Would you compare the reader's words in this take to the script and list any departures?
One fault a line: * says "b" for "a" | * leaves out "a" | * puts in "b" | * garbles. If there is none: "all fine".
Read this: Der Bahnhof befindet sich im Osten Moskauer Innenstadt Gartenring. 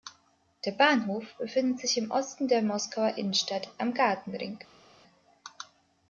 * puts in "der"
* puts in "am"